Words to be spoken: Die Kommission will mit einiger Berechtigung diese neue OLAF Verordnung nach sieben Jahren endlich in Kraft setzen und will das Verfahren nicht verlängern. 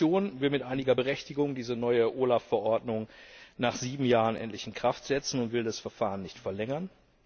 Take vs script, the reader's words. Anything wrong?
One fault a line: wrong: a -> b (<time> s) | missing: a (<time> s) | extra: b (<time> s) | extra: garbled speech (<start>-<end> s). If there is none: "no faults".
no faults